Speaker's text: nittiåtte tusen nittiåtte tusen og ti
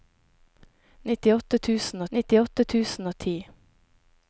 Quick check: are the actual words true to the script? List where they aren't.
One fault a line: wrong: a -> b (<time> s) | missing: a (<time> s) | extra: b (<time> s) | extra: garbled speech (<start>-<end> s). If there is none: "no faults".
no faults